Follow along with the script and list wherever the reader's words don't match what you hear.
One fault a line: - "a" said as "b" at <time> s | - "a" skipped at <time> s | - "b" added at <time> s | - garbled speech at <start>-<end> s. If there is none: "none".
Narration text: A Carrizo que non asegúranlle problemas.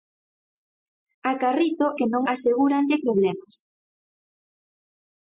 none